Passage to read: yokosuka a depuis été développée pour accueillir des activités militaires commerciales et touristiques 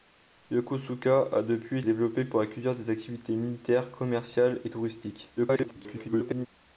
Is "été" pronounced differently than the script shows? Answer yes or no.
yes